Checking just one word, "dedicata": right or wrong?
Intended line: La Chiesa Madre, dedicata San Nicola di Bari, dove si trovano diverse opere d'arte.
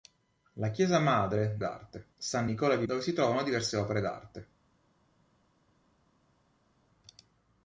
wrong